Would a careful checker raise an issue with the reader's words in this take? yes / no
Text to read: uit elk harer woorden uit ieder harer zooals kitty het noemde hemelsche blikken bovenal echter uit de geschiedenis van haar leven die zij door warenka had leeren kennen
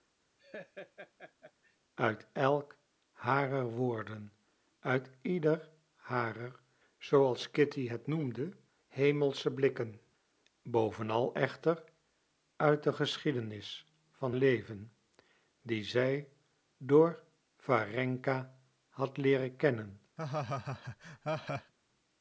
yes